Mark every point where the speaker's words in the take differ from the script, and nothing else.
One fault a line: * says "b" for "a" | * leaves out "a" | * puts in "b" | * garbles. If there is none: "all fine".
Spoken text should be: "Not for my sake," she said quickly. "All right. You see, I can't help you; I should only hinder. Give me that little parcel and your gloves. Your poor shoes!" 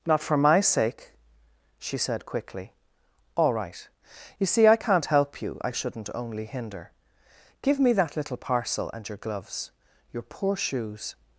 * says "shouldn't" for "should"